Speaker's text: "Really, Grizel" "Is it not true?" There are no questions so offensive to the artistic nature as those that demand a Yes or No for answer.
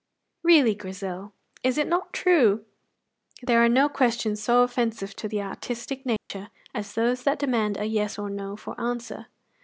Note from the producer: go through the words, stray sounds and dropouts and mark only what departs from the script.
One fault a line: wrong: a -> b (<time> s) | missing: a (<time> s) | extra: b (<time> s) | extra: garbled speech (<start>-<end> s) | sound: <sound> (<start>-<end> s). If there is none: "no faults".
sound: dropout (6.2-6.3 s)